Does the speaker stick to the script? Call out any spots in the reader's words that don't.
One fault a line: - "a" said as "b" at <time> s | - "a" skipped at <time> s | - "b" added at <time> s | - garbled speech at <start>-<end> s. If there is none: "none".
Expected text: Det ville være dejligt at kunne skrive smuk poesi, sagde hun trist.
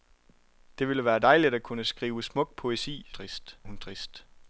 - "sagde" said as "trist" at 3.1 s